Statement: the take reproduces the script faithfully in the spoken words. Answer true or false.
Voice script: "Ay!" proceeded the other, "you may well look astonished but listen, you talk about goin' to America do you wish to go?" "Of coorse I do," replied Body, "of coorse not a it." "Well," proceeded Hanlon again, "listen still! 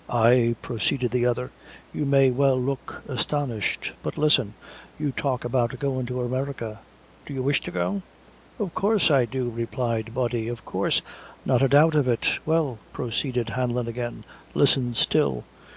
false